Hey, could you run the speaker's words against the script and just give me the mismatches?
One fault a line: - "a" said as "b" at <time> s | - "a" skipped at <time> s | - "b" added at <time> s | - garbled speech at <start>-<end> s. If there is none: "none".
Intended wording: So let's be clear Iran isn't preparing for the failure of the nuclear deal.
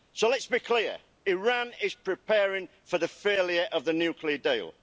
- "isn't" said as "is" at 1.8 s